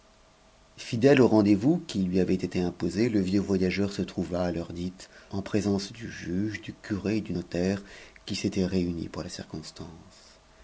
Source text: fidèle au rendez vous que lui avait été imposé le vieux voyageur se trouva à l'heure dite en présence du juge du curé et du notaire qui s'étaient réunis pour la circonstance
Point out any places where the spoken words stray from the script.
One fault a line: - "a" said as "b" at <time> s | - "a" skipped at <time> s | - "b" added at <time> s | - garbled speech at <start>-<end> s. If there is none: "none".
- "que" said as "qui" at 1.9 s